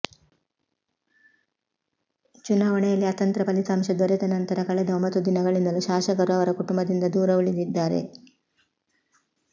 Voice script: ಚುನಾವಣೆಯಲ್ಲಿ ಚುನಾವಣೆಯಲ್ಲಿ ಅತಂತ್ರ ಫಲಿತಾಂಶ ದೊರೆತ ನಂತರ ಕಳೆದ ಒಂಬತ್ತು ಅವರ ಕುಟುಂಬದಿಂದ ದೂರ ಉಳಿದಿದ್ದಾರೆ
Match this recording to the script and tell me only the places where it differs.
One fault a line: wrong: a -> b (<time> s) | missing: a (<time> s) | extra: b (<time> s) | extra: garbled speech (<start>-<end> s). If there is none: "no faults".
missing: ಚುನಾವಣೆಯಲ್ಲಿ (3.1 s)
extra: ದಿನಗಳಿಂದಲೂ ಶಾಸಕರು (5.3 s)